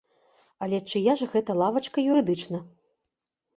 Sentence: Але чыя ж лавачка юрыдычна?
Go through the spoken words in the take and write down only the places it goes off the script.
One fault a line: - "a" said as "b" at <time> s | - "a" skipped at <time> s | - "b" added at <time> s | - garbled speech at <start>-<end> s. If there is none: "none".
- "гэта" added at 1.4 s